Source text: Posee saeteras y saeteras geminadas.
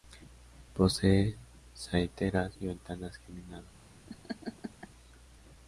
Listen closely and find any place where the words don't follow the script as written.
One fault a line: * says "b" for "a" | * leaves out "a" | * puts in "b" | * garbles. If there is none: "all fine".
* says "ventanas" for "saeteras"